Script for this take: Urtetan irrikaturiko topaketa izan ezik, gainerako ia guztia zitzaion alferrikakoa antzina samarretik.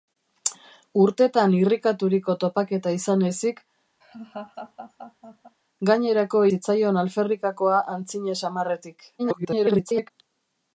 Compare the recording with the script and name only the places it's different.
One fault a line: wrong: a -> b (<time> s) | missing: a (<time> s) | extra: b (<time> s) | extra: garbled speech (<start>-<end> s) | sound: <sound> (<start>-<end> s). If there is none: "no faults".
sound: laugh (4.0-5.6 s)
missing: ia guztia (6.5 s)
extra: garbled speech (9.2-10.1 s)